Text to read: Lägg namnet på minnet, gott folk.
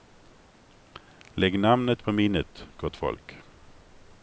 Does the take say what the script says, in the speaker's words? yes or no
yes